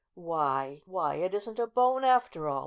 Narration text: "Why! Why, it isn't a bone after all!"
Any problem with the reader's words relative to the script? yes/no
no